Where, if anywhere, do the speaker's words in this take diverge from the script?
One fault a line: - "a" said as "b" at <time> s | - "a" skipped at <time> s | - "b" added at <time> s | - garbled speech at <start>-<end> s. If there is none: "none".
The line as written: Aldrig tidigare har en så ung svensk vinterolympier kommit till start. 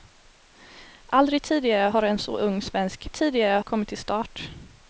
- "vinterolympier" said as "tidigare" at 3.1 s